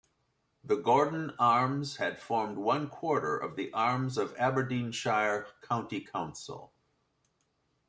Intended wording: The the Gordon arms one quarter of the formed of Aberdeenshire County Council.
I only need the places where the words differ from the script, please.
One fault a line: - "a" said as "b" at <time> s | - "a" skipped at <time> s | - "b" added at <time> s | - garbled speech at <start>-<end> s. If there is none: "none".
- "the" skipped at 0.8 s
- "had formed" added at 2.0 s
- "formed" said as "arms" at 3.7 s